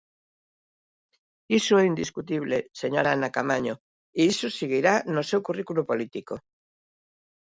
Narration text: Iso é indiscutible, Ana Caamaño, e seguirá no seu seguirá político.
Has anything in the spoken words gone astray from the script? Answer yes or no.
yes